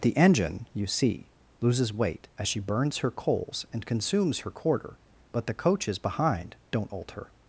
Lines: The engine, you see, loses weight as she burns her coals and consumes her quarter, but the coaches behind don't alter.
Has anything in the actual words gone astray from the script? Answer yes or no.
no